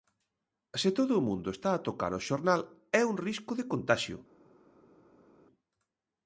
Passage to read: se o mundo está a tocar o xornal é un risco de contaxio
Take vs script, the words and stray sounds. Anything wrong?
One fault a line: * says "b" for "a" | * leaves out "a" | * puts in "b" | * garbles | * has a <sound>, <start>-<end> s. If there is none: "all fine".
* puts in "todo"